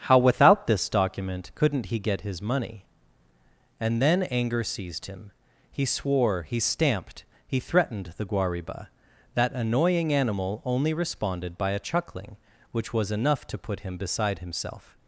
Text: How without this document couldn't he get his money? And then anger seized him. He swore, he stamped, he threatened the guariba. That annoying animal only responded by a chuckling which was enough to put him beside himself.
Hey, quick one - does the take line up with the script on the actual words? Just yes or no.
yes